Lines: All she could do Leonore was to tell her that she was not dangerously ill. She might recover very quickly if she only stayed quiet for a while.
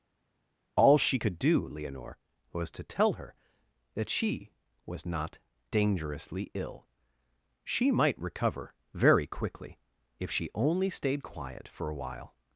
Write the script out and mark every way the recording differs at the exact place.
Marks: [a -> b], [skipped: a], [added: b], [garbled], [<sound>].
All she could do Leonore was to tell her that she was not dangerously ill. She might recover very quickly if she only stayed quiet for a while.